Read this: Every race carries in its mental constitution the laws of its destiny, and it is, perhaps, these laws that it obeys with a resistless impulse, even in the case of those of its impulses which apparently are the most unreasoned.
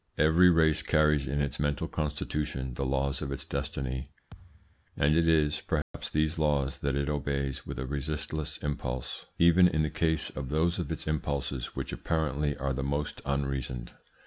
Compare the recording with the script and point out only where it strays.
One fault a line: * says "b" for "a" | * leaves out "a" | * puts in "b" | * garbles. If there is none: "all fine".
all fine